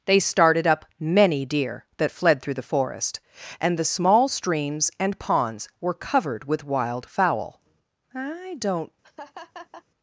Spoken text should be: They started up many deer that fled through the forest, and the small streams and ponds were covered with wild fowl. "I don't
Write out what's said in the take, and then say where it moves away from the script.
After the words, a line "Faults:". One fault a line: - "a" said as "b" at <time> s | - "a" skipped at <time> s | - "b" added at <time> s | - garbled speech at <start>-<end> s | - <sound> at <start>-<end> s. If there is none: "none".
They started up many deer that fled through the forest, and the small streams and ponds were covered with wild fowl. "I don't
Faults:
- laugh at 9.0-9.8 s